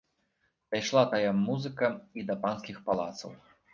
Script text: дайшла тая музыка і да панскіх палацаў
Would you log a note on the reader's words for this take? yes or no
no